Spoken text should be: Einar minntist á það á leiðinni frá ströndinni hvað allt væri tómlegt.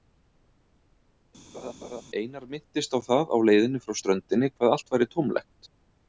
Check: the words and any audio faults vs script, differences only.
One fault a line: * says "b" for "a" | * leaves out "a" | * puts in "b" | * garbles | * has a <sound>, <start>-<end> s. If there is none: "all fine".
* has a laugh, 1.5-2.0 s